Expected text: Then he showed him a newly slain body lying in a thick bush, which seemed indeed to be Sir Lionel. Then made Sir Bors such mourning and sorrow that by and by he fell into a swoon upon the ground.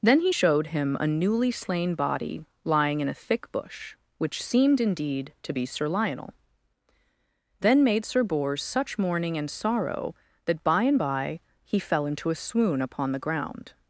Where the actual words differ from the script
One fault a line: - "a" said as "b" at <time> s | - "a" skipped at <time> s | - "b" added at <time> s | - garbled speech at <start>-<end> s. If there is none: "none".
none